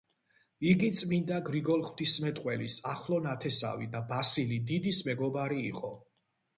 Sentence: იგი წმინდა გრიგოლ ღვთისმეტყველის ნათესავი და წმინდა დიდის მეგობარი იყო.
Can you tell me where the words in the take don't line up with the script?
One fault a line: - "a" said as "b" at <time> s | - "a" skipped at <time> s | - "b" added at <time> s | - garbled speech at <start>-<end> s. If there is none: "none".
- "ახლო" added at 2.9 s
- "წმინდა" said as "ბასილი" at 4.1 s